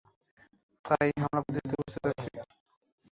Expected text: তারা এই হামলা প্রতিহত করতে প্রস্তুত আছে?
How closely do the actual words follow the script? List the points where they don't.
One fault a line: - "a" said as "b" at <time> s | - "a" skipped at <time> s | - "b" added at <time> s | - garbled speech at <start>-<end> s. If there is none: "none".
- "করতে" skipped at 1.7 s